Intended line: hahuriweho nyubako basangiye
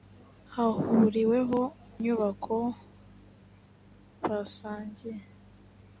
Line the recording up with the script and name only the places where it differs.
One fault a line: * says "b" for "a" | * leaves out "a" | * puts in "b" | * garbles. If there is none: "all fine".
all fine